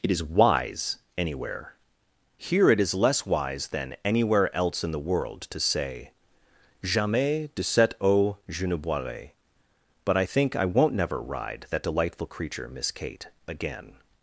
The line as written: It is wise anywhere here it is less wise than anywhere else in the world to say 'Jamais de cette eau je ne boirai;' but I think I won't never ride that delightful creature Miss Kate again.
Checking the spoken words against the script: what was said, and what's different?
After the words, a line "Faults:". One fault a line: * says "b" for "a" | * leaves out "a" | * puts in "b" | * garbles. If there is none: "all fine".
It is wise anywhere here it is less wise than anywhere else in the world to say 'Jamais de cette eau je ne boirai;' but I think I won't never ride that delightful creature Miss Kate again.
Faults:
all fine